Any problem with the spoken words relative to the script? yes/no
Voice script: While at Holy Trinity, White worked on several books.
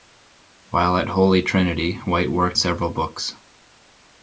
yes